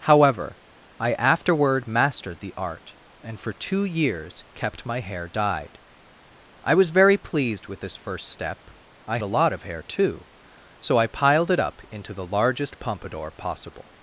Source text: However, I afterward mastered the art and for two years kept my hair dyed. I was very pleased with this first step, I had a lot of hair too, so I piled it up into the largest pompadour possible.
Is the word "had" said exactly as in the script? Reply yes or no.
no